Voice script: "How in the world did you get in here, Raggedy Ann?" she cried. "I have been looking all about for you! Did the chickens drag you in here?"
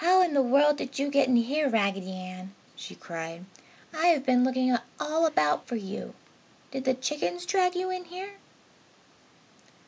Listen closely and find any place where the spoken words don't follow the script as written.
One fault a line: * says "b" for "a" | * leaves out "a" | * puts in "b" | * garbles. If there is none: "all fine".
all fine